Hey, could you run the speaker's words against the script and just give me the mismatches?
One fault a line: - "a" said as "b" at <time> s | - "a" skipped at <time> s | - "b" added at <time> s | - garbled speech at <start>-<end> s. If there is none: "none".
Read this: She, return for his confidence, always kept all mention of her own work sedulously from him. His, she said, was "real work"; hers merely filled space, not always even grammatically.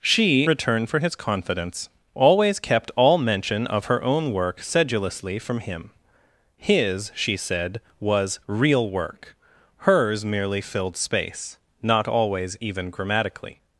none